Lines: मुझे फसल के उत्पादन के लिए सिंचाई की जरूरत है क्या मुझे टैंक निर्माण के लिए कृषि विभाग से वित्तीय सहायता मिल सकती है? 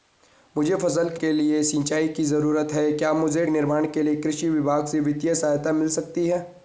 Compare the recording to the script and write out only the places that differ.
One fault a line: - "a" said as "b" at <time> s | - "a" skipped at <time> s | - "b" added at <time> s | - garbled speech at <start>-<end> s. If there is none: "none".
- "उत्पादन" skipped at 1.2 s
- "टैंक" skipped at 3.4 s